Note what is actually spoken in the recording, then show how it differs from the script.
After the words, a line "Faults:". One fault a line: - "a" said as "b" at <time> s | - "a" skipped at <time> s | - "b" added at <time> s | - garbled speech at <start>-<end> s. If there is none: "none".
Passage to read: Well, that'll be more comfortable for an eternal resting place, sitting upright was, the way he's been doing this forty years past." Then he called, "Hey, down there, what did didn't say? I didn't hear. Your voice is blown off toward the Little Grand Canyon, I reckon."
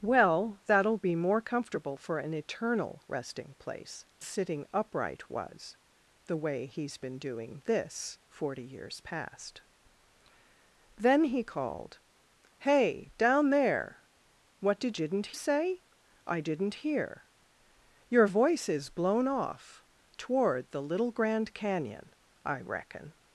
Well, that'll be more comfortable for an eternal resting place, sitting upright was, the way he's been doing this forty years past." Then he called, "Hey, down there, what did didn't say? I didn't hear. Your voice is blown off toward the Little Grand Canyon, I reckon."
Faults:
none